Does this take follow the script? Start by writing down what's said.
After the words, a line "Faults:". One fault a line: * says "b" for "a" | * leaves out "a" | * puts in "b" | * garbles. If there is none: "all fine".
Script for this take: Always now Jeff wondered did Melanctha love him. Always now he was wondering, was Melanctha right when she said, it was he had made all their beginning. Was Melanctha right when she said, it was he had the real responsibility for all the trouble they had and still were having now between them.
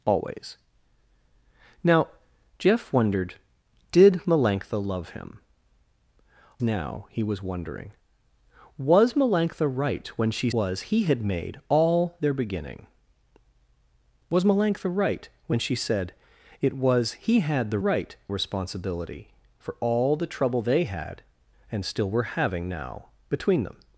Always now Jeff wondered did Melanctha love him. Now he was wondering, was Melanctha right when she was he had made all their beginning. Was Melanctha right when she said, it was he had the right responsibility for all the trouble they had and still were having now between them.
Faults:
* leaves out "Always"
* leaves out "said it"
* says "right" for "real"